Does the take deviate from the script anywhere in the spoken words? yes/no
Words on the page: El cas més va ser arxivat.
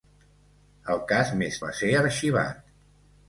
no